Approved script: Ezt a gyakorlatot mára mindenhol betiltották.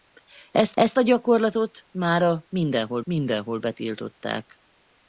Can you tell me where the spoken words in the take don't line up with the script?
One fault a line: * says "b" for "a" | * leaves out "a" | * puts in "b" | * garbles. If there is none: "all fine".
* puts in "ezt"
* puts in "mindenhol"